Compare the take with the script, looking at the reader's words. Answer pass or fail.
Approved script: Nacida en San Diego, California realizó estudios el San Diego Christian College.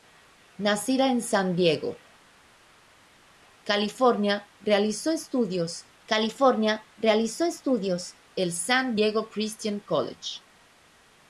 fail